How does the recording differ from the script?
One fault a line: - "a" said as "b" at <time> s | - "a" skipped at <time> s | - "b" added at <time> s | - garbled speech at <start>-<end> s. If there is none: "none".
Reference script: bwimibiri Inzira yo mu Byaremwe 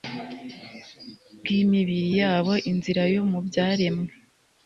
- "yabo" added at 2.2 s